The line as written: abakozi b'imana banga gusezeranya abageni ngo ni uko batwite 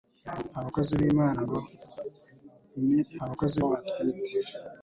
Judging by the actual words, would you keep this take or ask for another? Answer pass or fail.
fail